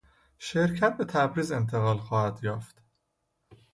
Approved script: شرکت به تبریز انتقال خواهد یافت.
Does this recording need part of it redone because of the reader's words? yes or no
no